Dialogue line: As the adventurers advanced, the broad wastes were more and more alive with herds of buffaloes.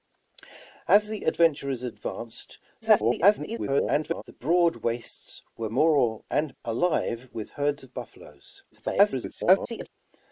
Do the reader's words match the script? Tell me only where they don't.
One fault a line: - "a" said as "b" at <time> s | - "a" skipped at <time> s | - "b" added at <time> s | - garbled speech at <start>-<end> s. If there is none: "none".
- garbled speech at 2.8-4.2 s
- "more" skipped at 6.5 s
- garbled speech at 8.7-9.9 s